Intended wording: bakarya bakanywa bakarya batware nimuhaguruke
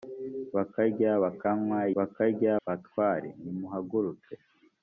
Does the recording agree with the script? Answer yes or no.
yes